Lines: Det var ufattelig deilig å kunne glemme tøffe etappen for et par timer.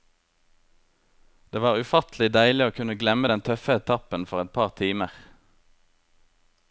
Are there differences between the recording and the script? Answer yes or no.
yes